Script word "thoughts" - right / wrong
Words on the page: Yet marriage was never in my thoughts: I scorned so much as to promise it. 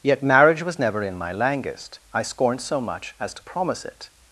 wrong